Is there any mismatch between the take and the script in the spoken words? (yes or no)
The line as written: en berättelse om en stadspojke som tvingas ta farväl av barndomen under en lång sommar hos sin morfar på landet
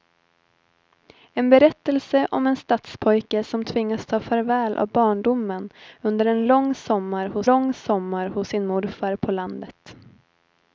yes